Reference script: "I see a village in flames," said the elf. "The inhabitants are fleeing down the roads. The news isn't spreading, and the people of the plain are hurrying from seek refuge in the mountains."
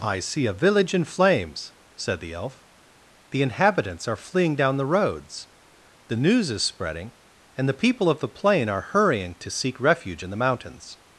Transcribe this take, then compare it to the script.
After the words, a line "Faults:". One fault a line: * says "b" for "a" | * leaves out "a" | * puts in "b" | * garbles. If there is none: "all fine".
"I see a village in flames," said the elf. "The inhabitants are fleeing down the roads. The news is spreading, and the people of the plain are hurrying to seek refuge in the mountains."
Faults:
* says "is" for "isn't"
* says "to" for "from"